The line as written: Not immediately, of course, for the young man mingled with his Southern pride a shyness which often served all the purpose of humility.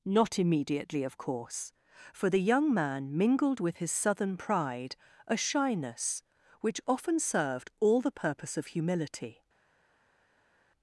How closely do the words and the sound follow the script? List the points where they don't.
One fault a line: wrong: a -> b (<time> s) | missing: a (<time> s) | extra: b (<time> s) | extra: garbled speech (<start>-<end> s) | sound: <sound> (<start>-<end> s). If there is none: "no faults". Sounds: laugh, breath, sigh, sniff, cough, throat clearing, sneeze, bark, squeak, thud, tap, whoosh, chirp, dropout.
no faults